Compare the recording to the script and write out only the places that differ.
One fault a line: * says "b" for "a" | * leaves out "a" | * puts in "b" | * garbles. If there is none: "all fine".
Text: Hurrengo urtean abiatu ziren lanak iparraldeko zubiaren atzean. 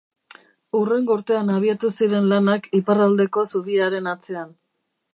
all fine